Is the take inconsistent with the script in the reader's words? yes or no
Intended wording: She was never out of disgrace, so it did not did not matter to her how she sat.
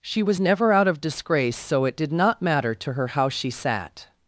yes